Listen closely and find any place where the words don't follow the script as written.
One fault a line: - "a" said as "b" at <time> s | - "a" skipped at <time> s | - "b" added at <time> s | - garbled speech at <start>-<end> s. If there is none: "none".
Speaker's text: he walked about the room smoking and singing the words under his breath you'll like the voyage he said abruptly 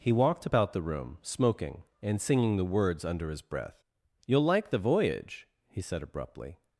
none